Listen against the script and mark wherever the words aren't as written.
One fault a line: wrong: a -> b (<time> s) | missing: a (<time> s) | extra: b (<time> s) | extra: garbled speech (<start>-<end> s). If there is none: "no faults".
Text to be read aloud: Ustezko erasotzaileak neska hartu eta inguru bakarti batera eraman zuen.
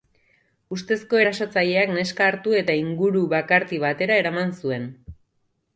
no faults